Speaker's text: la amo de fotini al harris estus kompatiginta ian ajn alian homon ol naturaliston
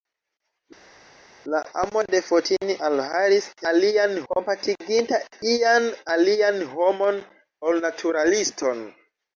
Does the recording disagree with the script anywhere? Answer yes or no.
yes